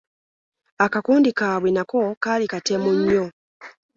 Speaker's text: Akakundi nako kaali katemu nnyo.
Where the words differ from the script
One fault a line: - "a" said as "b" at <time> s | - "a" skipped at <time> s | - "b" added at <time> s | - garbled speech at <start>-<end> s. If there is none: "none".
- "kaabwe" added at 1.4 s